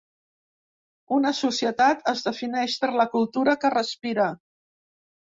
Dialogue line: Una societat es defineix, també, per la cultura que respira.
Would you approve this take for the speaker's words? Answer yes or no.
no